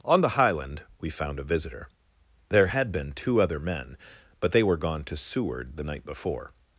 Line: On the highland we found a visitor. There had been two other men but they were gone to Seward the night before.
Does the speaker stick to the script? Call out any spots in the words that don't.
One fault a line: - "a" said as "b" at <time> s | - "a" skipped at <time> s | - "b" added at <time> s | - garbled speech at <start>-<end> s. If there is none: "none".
none